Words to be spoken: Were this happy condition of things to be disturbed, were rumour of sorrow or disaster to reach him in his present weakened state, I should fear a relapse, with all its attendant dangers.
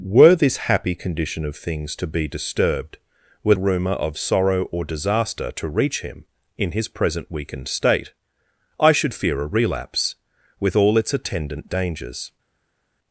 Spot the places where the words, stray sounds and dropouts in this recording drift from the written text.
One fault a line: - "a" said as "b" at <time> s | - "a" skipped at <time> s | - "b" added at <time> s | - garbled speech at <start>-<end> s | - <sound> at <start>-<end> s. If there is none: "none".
none